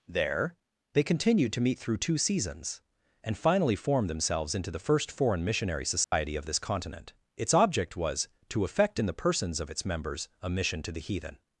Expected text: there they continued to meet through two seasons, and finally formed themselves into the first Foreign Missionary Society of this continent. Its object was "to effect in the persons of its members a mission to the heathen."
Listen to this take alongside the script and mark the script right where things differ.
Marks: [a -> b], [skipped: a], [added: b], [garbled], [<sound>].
there they continued to meet through two seasons, and finally formed themselves into the first Foreign Missionary Society [dropout] of this continent. Its object was "to effect in the persons of its members a mission to the heathen."